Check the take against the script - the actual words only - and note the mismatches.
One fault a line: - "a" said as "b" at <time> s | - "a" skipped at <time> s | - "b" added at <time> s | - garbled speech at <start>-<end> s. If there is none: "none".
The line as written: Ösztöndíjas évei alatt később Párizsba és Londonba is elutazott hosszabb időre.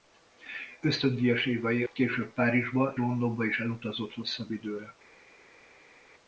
- "alatt" skipped at 1.8 s
- "és" skipped at 2.9 s